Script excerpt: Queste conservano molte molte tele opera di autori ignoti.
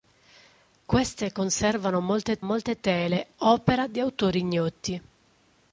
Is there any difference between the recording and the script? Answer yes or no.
no